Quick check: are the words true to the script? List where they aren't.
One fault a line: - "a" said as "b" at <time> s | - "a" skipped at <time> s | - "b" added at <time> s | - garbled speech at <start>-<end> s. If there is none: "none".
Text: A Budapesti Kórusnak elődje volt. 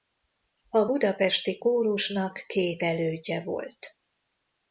- "két" added at 2.5 s